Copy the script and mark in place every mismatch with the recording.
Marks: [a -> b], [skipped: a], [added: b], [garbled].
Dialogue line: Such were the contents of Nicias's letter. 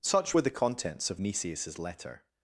Such were the contents of Nicias's letter.